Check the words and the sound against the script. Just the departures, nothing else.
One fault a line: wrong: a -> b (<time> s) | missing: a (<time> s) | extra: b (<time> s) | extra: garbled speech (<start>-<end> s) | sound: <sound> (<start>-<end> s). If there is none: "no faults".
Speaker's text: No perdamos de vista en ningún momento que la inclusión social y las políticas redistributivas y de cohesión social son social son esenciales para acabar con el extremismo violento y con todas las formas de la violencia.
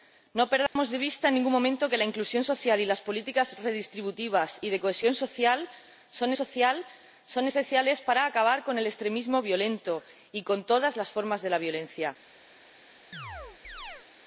sound: dropout (0.7-0.8 s)
sound: chirp (13.1-14.1 s)